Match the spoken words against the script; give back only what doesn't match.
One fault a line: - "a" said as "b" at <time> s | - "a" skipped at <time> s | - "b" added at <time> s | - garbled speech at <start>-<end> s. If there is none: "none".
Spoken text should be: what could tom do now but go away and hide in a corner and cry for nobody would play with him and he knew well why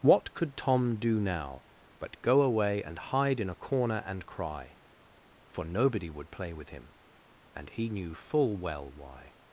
- "full" added at 8.1 s